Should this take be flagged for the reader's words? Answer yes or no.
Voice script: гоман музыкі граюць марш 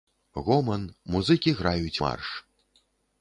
no